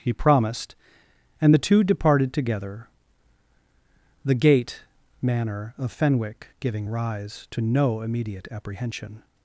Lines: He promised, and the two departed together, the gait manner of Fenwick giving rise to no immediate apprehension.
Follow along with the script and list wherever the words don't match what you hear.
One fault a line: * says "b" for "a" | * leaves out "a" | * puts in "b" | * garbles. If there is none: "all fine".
all fine